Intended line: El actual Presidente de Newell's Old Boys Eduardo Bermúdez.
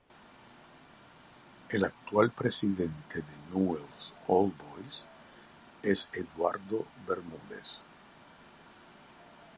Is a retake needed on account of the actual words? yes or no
yes